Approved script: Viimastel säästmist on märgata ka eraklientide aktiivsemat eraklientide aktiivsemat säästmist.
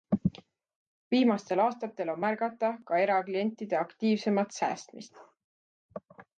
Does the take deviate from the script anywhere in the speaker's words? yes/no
yes